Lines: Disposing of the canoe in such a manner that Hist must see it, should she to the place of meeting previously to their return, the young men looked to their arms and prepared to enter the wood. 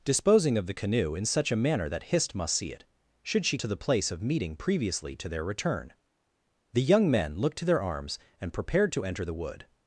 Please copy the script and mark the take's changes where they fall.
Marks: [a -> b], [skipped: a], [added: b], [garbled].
Disposing of the canoe in such a manner that Hist must see it, should she to the place of meeting previously to their return, the young men looked to their arms and prepared to enter the wood.